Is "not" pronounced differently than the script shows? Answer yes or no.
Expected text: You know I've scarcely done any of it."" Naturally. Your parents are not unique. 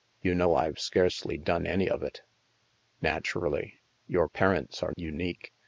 yes